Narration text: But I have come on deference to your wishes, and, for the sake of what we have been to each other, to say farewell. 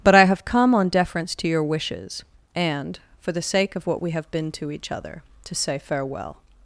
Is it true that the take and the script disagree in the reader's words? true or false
false